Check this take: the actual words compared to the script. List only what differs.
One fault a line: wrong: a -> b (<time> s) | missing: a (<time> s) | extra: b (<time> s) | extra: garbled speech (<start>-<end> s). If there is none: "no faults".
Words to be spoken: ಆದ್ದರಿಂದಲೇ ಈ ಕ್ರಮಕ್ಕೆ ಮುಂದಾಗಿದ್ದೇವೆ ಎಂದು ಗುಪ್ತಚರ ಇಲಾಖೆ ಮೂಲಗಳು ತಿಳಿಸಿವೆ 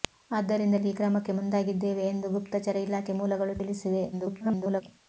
extra: garbled speech (4.1-4.8 s)